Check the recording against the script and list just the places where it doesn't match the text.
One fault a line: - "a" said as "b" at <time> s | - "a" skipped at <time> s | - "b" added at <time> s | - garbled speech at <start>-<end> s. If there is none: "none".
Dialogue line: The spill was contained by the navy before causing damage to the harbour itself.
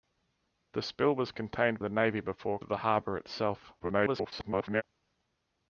- "by" skipped at 1.8 s
- "causing damage" skipped at 2.6 s
- garbled speech at 3.8-4.8 s